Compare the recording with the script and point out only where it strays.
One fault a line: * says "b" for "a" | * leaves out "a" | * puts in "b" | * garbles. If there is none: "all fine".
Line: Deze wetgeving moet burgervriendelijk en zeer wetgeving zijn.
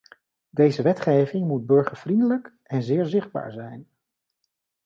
* says "zichtbaar" for "wetgeving"